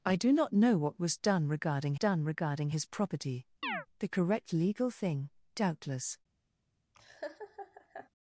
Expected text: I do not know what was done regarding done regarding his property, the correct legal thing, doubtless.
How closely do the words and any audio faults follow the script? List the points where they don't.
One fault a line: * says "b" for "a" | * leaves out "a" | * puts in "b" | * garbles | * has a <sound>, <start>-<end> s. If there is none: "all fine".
* has a chirp, 3.6-3.9 s
* has a laugh, 6.9-8.1 s